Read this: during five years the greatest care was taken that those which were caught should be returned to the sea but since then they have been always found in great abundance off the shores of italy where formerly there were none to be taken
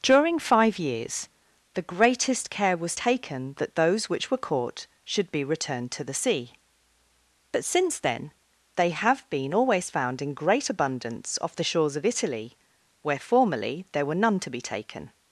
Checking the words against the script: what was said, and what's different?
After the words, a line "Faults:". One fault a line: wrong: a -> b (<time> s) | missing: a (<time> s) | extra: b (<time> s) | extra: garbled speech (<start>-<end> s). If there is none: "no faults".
during five years the greatest care was taken that those which were caught should be returned to the sea but since then they have been always found in great abundance off the shores of italy where formerly there were none to be taken
Faults:
no faults